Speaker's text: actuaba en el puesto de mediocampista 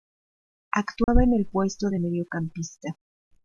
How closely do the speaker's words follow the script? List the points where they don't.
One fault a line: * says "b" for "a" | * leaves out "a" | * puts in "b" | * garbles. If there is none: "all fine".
all fine